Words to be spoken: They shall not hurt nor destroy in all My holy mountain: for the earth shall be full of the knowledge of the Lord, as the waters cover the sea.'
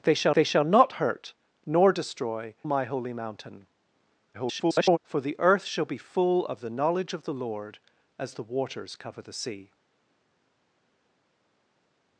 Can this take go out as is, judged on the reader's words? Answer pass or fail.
fail